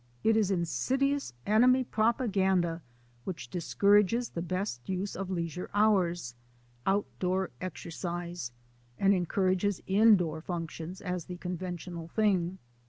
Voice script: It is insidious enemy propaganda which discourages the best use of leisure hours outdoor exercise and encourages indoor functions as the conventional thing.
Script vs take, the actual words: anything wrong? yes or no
no